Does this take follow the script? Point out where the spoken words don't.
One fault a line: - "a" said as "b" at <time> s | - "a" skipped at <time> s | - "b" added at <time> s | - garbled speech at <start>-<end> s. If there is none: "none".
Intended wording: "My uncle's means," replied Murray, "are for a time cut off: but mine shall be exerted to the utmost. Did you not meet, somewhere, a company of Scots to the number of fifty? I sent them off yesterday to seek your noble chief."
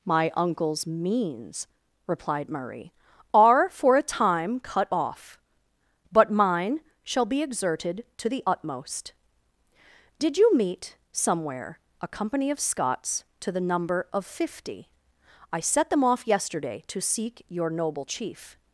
- "not" skipped at 10.5 s
- "sent" said as "set" at 15.6 s